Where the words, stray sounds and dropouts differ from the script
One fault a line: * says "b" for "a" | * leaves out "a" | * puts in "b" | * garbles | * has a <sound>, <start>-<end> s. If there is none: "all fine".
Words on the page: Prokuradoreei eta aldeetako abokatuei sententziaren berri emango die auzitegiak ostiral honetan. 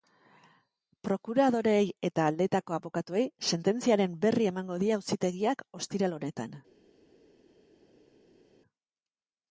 all fine